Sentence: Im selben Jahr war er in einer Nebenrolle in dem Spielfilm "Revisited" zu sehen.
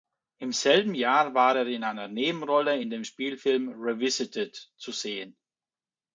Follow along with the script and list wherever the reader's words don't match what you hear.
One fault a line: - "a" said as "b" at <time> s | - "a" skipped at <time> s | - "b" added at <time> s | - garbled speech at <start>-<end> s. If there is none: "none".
none